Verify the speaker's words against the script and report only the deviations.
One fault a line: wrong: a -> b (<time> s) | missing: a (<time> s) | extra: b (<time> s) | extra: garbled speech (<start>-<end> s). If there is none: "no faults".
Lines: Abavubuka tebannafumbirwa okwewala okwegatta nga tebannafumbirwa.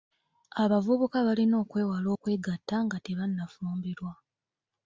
wrong: tebannafumbirwa -> balina (1.3 s)